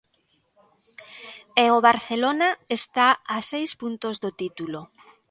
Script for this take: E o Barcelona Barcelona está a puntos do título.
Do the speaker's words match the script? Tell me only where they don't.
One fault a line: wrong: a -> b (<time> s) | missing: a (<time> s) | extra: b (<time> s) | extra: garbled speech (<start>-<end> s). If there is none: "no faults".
missing: Barcelona (2.5 s)
extra: seis (3.5 s)